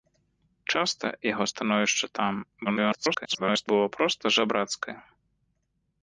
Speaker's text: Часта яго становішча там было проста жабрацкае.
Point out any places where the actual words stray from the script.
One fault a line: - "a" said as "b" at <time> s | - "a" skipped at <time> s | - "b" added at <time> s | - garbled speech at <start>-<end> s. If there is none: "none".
- garbled speech at 2.6-3.7 s